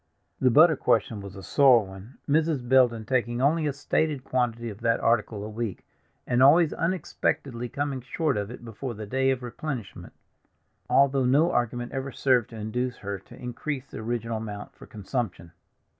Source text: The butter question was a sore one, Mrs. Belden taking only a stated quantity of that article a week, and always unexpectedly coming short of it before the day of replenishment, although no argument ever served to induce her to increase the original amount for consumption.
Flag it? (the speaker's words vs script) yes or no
no